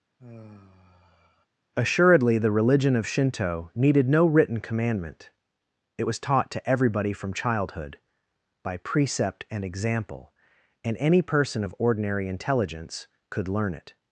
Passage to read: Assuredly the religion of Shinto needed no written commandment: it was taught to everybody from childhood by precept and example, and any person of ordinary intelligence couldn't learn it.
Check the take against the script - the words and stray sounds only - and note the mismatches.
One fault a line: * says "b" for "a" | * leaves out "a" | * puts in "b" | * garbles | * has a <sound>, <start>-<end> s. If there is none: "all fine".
* has a sigh, 0.2-1.5 s
* says "could" for "couldn't"